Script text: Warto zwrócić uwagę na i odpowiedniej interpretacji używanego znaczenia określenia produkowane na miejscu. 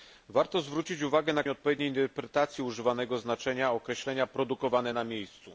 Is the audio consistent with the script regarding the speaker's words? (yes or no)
yes